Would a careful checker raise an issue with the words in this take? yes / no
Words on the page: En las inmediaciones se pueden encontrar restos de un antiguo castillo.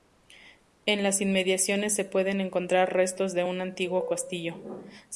no